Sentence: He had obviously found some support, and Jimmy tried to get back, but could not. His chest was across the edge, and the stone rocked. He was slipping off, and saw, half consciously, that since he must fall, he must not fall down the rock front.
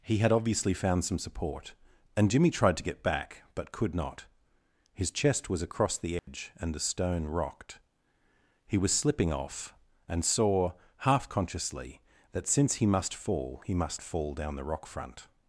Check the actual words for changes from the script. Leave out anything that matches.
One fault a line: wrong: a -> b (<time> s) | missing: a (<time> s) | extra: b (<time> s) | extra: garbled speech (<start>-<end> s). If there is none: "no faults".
missing: not (14.0 s)